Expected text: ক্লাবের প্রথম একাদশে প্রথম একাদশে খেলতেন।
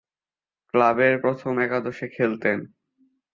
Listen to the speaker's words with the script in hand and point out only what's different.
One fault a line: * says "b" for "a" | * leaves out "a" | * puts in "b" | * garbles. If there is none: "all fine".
* leaves out "প্রথম একাদশে"